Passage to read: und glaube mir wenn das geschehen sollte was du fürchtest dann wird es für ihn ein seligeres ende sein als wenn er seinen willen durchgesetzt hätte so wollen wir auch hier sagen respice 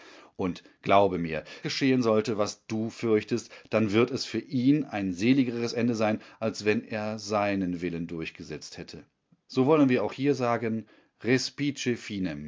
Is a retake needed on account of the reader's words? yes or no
yes